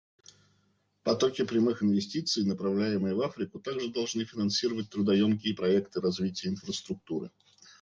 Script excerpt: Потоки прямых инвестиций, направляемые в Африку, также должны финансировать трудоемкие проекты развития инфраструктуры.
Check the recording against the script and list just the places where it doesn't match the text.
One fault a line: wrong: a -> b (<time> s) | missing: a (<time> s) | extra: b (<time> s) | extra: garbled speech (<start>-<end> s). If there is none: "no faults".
no faults